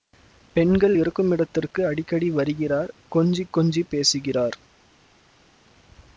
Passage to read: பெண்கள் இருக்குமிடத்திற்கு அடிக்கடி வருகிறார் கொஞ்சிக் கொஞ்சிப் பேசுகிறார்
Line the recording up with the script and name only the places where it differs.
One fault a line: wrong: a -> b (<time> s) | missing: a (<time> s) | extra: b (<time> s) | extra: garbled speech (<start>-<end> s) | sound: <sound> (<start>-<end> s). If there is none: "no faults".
no faults